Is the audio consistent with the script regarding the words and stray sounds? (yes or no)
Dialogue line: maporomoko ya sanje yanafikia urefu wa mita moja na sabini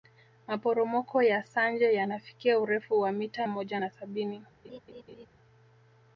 no